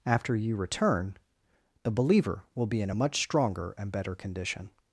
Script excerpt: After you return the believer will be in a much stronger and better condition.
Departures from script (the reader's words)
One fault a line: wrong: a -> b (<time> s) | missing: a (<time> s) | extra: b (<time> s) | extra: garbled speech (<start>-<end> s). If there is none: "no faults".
no faults